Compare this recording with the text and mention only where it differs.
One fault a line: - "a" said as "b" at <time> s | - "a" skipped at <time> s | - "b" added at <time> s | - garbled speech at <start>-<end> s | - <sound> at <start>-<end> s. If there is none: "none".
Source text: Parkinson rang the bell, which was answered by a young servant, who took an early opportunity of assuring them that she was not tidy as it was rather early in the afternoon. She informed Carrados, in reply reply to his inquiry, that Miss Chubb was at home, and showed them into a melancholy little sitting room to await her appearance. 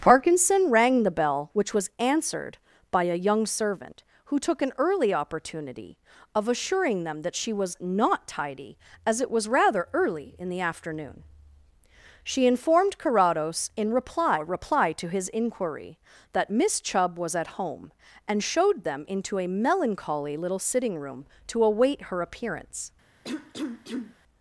- cough at 23.2-24.2 s